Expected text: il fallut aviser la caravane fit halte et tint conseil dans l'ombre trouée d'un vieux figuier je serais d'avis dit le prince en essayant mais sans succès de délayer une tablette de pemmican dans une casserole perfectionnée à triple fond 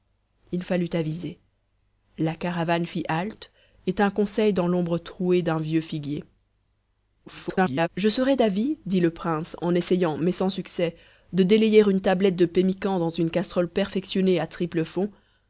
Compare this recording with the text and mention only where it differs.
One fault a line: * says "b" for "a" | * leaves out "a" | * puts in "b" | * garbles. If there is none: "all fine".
* garbles